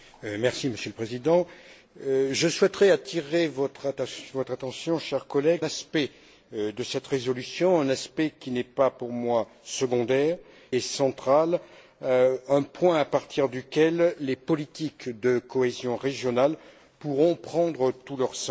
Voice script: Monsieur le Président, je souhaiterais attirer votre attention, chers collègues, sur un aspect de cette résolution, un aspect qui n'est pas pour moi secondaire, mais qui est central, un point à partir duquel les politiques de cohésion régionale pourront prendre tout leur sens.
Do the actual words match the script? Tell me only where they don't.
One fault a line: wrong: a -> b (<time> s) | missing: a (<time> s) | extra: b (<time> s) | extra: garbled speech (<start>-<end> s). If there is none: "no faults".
missing: sur un (5.7 s)
missing: mais qui (10.4 s)